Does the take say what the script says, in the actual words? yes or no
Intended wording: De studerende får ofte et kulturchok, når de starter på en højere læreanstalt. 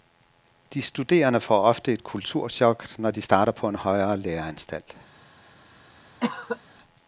yes